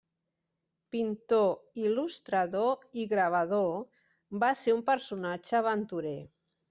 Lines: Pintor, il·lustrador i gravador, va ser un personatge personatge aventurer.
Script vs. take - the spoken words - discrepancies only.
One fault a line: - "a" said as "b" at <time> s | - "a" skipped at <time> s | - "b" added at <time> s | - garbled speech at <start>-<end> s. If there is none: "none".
- "personatge" skipped at 5.6 s